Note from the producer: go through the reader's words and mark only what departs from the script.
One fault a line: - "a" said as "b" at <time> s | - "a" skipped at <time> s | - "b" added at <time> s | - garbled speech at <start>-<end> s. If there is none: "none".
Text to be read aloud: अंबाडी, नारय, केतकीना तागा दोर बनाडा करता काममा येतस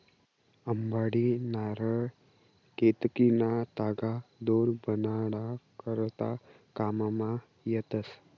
none